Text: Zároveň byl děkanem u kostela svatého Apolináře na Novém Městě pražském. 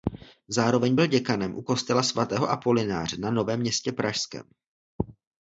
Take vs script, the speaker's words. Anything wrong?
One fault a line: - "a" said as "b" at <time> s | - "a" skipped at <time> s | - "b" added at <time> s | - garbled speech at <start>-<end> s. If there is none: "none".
none